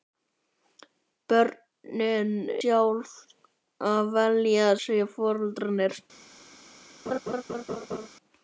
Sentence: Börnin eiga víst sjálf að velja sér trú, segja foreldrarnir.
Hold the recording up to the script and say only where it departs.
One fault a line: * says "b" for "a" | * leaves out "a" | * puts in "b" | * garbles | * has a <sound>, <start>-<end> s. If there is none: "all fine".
* leaves out "eiga víst"
* leaves out "sér trú"
* has a laugh, 7.1-8.1 s